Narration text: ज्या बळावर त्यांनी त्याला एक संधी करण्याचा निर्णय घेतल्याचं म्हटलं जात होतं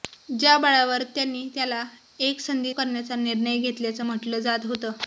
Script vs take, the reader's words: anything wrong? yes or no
no